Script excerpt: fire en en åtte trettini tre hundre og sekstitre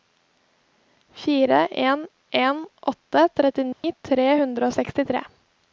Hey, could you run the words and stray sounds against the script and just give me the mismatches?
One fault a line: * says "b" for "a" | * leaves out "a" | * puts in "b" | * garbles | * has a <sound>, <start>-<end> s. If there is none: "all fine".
* has a dropout, 3.7-3.8 s